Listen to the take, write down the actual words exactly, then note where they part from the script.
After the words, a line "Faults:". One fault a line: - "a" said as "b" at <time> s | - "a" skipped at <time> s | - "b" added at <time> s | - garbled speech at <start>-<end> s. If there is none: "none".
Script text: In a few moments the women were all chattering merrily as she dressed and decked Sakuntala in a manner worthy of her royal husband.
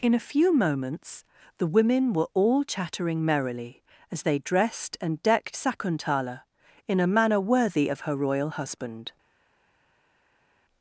In a few moments the women were all chattering merrily as they dressed and decked Sakuntala in a manner worthy of her royal husband.
Faults:
- "she" said as "they" at 4.2 s